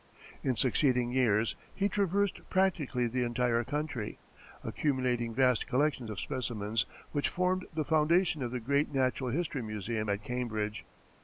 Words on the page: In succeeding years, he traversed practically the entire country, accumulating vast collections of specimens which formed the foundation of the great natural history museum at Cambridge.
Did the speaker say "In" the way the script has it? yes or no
yes